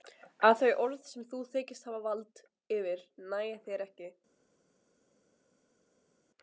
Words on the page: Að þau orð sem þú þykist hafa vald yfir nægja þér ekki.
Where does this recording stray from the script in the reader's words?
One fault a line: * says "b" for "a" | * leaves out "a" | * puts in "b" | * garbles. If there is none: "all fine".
all fine